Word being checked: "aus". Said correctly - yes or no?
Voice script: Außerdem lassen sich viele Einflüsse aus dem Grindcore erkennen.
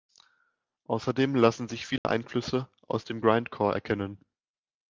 yes